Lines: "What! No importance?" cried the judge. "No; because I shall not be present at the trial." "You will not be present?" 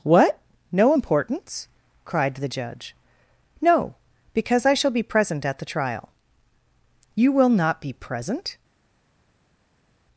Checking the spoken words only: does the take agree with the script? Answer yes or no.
no